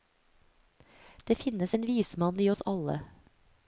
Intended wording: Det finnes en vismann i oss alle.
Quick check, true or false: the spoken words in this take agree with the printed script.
true